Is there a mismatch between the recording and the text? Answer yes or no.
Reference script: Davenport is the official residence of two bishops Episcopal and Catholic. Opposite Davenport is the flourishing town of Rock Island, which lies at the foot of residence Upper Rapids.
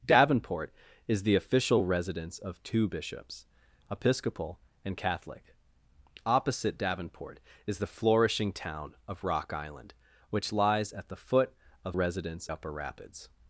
no